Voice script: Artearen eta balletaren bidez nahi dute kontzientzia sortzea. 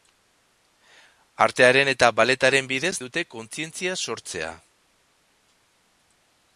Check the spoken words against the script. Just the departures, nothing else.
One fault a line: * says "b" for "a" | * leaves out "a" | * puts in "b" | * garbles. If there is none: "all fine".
* leaves out "nahi"